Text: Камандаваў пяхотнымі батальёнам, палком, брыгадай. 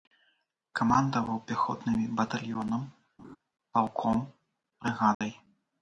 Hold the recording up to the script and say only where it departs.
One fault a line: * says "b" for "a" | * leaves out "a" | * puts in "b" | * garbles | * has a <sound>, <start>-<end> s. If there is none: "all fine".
* has a laugh, 3.2-3.4 s
* has a dropout, 5.1-5.2 s